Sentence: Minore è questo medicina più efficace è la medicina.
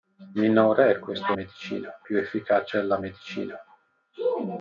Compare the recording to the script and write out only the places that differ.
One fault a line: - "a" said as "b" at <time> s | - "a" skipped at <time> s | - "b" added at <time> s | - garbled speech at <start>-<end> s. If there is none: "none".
none